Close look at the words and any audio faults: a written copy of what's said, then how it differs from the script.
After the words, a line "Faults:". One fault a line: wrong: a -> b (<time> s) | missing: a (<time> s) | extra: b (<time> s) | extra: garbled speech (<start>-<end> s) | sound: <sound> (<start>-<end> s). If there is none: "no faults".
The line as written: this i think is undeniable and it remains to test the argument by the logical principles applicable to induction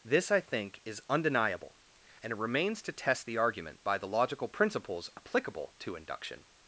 this i think is undeniable and it remains to test the argument by the logical principles applicable to induction
Faults:
no faults